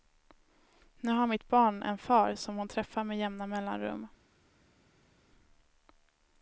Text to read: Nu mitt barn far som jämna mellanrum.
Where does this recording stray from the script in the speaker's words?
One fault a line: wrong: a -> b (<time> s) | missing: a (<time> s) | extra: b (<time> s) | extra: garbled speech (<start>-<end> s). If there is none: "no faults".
extra: har (1.1 s)
extra: en (1.8 s)
extra: hon träffar med (2.5 s)